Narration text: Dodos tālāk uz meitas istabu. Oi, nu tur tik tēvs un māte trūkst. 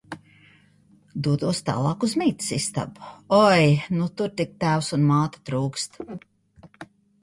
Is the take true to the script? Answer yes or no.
yes